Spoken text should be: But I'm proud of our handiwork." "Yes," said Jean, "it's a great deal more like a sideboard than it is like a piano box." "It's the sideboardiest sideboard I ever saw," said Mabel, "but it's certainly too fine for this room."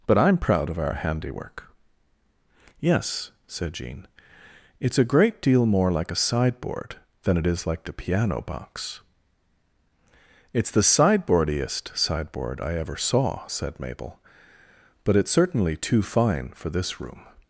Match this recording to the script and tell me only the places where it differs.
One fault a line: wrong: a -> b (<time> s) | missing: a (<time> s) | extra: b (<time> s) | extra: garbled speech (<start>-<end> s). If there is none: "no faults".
wrong: a -> the (7.8 s)